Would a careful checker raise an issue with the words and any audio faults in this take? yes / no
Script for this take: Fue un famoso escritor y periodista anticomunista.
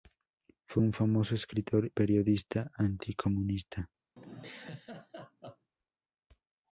yes